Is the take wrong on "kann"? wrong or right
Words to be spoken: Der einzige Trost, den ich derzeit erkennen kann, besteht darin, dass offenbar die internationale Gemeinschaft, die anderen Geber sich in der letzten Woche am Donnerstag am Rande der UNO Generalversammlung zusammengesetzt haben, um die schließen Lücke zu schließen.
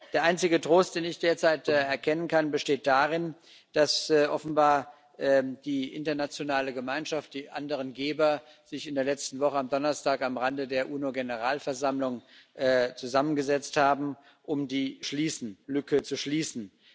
right